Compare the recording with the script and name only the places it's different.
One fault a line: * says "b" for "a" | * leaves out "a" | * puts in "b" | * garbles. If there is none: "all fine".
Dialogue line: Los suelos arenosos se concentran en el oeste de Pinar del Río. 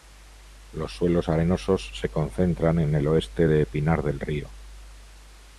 all fine